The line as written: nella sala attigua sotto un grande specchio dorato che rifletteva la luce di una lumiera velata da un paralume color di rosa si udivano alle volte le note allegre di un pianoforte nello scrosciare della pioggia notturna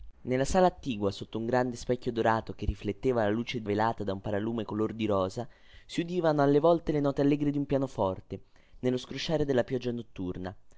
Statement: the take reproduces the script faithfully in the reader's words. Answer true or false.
false